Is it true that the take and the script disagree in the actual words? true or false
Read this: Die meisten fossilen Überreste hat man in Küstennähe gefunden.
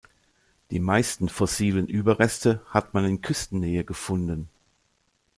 false